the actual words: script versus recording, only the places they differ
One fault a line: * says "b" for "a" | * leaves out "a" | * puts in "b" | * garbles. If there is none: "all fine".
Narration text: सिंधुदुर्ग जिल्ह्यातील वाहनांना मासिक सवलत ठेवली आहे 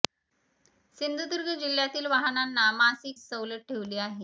all fine